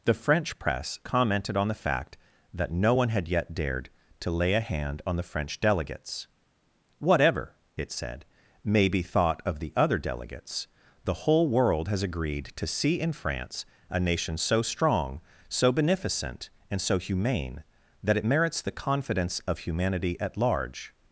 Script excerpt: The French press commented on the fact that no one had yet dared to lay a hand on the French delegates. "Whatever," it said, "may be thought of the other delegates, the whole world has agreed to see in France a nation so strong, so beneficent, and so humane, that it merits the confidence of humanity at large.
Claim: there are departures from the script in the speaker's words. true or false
false